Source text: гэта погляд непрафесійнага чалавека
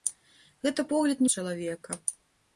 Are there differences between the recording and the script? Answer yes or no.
yes